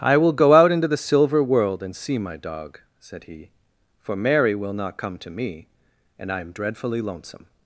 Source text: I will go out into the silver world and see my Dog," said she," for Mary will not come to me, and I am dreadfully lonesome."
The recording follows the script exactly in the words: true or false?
false